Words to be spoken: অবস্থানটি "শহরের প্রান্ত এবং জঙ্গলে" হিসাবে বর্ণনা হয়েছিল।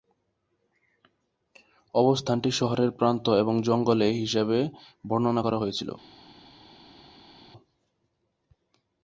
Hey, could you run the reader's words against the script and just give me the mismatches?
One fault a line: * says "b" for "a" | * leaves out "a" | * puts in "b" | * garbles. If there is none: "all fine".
* puts in "করা"